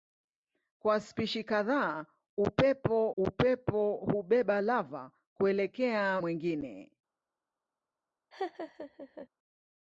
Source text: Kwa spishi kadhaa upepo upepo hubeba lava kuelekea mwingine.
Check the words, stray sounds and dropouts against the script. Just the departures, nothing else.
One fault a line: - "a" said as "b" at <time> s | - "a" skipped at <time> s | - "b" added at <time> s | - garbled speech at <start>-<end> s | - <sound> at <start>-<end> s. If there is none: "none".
- laugh at 8.3-9.3 s